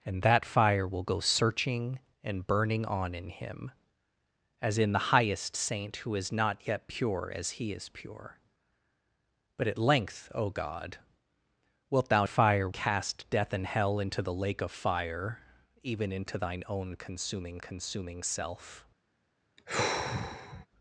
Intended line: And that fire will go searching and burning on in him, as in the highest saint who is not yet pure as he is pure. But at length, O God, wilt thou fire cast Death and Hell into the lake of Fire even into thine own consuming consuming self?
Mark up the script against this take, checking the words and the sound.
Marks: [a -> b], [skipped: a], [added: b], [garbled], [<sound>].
And that fire will go searching and burning on in him, as in the highest saint who is not yet pure as he is pure. But at length, O God, wilt thou fire cast Death and Hell into the lake of Fire even into thine own consuming consuming self? [sigh]